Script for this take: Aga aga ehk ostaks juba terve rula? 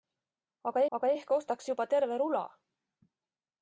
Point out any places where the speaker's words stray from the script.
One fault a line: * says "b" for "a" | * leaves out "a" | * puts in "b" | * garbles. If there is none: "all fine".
all fine